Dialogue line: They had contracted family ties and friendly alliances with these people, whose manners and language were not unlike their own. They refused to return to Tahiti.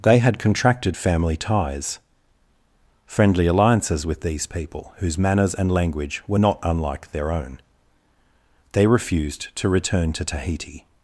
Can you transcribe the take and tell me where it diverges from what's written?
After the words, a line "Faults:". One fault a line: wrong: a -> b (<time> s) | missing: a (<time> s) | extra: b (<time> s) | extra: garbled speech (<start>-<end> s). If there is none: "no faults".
They had contracted family ties friendly alliances with these people, whose manners and language were not unlike their own. They refused to return to Tahiti.
Faults:
missing: and (2.0 s)